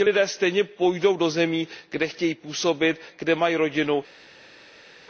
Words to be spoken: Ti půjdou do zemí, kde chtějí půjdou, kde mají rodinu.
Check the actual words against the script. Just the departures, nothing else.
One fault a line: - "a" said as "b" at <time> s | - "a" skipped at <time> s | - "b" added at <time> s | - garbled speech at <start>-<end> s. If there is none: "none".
- "lidé stejně" added at 0.0 s
- "půjdou" said as "působit" at 2.4 s